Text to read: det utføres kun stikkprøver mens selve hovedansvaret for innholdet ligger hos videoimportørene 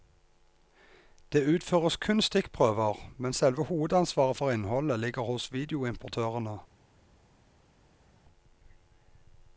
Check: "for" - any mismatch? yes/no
no